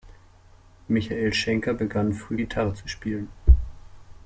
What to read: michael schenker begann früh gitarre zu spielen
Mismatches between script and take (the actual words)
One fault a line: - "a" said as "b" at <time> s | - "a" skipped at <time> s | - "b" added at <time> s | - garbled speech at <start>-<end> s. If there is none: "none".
none